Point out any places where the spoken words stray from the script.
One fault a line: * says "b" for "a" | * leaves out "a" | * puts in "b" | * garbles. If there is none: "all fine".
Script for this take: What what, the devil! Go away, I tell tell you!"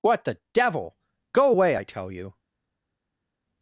* leaves out "what"
* leaves out "tell"